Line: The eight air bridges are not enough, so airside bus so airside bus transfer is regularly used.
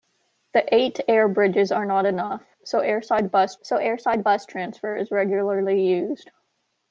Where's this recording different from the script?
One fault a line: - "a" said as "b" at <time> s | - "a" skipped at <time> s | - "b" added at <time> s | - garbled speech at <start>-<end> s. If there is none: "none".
none